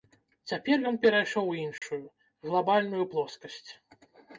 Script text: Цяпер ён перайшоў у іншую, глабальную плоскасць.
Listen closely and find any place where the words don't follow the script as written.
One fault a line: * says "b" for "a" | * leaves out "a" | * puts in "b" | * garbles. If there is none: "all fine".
all fine